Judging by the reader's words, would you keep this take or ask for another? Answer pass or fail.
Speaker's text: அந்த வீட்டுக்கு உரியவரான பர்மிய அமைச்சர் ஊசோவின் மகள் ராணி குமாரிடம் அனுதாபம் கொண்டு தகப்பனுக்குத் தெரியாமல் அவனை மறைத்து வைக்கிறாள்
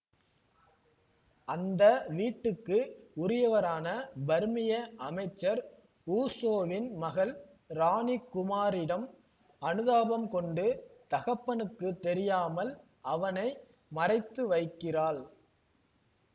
pass